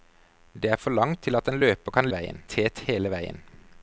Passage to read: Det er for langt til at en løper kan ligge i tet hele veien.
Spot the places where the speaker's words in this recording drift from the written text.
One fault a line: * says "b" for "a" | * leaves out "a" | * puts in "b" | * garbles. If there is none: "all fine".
* says "veien" for "ligge"